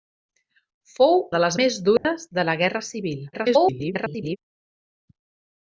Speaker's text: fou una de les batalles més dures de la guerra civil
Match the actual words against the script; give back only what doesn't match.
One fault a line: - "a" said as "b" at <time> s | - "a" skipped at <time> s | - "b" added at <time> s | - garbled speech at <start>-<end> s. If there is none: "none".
- "una" skipped at 1.2 s
- "batalles" skipped at 1.6 s
- garbled speech at 3.3-4.4 s